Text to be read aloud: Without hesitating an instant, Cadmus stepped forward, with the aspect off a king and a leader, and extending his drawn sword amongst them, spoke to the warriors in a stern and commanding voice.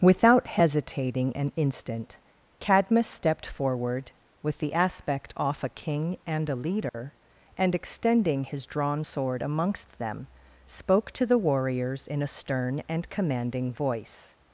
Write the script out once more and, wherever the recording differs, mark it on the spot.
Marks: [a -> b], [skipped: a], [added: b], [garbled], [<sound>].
Without hesitating an instant, Cadmus stepped forward, with the aspect off a king and a leader, [dropout] and extending his drawn sword amongst them, spoke to the warriors in a stern and commanding voice.